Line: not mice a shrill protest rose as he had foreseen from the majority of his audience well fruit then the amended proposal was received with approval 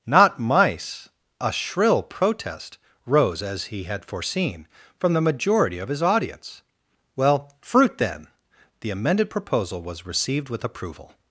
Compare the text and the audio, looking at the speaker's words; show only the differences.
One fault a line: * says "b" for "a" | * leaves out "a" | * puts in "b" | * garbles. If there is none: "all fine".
all fine